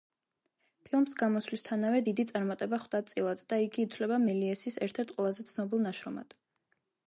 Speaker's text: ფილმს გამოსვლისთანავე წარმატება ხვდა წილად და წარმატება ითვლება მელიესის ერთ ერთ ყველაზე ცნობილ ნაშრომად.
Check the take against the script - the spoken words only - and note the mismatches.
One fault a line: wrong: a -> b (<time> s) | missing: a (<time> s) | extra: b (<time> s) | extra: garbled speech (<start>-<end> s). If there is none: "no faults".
extra: დიდი (2.0 s)
wrong: წარმატება -> იგი (3.7 s)